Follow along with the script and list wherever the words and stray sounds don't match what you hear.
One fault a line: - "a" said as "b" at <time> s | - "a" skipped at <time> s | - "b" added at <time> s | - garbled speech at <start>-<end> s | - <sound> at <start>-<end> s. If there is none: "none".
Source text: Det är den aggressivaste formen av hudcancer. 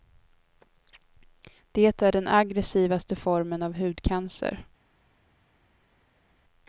none